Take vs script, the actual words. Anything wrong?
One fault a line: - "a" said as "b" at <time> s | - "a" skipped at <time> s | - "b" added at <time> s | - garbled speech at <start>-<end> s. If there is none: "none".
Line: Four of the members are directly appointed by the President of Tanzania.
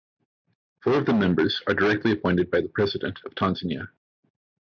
none